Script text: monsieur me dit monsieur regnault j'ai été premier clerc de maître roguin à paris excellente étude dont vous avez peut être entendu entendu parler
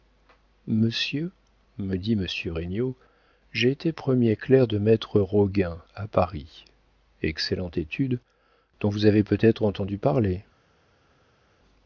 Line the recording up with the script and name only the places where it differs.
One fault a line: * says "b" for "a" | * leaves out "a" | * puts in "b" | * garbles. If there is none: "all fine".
* leaves out "entendu"